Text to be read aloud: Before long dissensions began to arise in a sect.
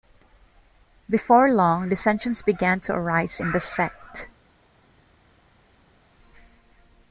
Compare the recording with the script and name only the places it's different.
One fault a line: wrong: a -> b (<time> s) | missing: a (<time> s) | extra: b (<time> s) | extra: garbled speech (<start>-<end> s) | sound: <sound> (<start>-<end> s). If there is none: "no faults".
wrong: a -> the (3.5 s)